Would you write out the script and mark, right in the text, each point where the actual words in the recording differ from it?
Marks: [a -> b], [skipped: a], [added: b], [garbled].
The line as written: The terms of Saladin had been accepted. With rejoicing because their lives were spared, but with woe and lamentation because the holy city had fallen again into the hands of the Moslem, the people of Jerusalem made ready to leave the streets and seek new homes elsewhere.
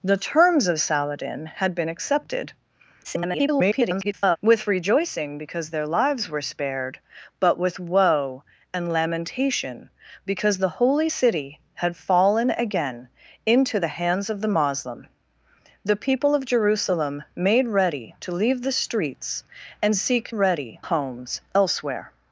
The terms of Saladin had been accepted. [garbled] With rejoicing because their lives were spared, but with woe and lamentation because the holy city had fallen again into the hands of the Moslem, the people of Jerusalem made ready to leave the streets and seek [new -> ready] homes elsewhere.